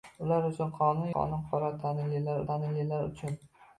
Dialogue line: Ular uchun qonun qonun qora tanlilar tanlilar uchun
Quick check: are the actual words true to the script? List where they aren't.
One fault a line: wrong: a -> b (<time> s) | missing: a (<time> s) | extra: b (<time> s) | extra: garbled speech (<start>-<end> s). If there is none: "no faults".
no faults